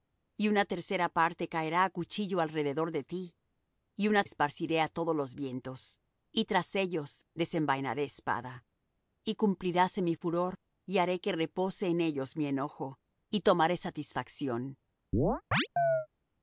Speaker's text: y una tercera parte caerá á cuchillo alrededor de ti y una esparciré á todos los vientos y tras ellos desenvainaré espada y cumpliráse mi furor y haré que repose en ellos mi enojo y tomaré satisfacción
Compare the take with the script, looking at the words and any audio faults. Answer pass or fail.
fail